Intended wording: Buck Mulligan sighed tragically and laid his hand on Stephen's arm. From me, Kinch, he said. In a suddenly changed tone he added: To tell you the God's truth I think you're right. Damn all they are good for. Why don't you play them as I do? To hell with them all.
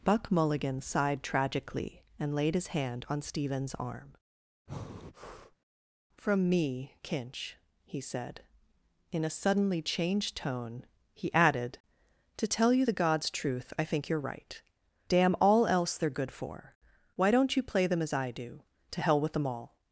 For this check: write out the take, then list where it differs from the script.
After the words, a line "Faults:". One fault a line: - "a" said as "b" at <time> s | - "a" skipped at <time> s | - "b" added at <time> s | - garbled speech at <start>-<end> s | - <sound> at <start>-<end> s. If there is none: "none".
Buck Mulligan sighed tragically and laid his hand on Stephen's arm. From me, Kinch, he said. In a suddenly changed tone he added: To tell you the God's truth I think you're right. Damn all else they are good for. Why don't you play them as I do? To hell with them all.
Faults:
- breath at 4.7-5.6 s
- "else" added at 15.7 s